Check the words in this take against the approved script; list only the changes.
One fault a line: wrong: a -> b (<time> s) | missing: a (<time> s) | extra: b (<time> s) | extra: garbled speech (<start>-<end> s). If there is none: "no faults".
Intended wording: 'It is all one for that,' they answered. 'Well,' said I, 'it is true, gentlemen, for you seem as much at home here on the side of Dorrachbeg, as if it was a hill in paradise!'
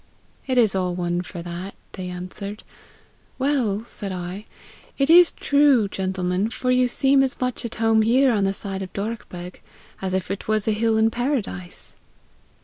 no faults